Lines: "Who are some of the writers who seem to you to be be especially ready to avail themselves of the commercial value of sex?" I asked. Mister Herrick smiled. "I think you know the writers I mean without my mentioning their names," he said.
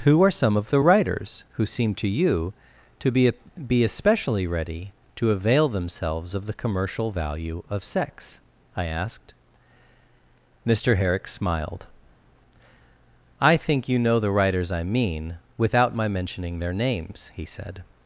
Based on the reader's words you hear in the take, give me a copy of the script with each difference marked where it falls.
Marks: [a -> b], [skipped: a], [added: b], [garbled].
"Who are some of the writers who seem to you to be be especially ready to avail themselves of the commercial value of sex?" I asked. Mister Herrick smiled. "I think you know the writers I mean without my mentioning their names," he said.